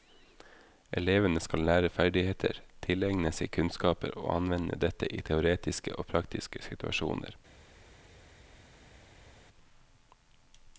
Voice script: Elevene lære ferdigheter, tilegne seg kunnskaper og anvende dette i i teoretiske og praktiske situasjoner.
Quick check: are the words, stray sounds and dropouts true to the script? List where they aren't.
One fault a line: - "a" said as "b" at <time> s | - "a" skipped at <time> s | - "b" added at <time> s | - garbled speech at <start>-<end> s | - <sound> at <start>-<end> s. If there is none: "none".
- "skal" added at 1.4 s
- "i" skipped at 5.2 s